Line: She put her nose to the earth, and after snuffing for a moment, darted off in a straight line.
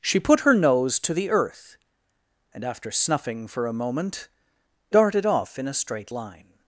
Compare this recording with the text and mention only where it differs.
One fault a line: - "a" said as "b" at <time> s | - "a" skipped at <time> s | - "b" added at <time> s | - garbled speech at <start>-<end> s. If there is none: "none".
none